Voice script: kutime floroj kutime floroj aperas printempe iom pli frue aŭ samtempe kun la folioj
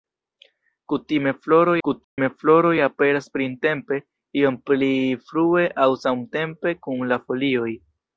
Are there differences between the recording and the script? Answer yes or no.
no